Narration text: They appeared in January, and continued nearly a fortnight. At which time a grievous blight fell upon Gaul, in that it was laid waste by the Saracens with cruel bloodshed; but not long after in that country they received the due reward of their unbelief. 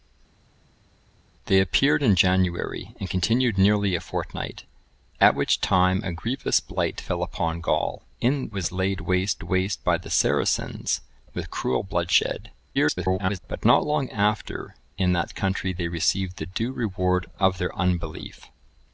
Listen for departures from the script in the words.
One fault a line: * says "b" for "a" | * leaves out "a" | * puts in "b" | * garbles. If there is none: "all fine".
* leaves out "that it"
* puts in "waste"
* garbles